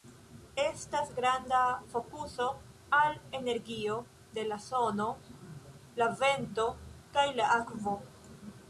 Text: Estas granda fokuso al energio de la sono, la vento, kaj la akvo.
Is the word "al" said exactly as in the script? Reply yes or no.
yes